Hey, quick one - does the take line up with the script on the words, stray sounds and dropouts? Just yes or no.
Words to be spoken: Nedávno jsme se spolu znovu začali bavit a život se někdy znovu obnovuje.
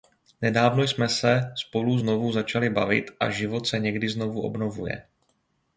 yes